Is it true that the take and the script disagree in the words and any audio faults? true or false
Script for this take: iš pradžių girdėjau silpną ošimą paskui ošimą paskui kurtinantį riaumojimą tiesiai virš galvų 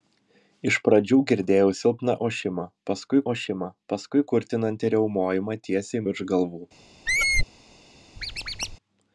true